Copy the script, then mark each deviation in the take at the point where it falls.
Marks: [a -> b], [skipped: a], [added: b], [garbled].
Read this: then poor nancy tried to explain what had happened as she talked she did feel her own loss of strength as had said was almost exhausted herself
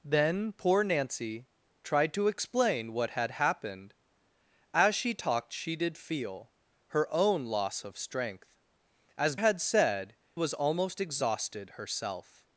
then poor nancy tried to explain what had happened as she talked she did feel her own loss of strength as had said was almost exhausted herself